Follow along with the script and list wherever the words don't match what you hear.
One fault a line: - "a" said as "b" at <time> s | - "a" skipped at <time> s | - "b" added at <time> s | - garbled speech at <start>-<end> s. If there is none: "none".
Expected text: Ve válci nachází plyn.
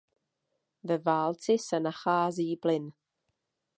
- "se" added at 1.7 s